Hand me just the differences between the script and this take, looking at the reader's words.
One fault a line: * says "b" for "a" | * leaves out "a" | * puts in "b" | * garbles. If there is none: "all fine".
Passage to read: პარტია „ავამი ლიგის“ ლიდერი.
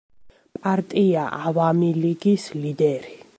all fine